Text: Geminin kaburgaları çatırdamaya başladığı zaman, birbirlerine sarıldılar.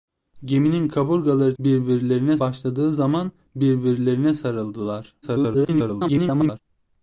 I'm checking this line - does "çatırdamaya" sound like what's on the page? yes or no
no